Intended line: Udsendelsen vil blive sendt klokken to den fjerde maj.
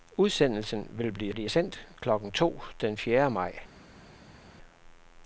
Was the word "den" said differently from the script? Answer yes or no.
no